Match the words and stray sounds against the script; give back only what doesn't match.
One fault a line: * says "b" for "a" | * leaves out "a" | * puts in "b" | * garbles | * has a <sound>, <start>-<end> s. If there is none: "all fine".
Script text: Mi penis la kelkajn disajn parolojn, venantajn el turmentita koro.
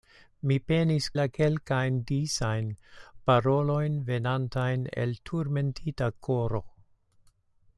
all fine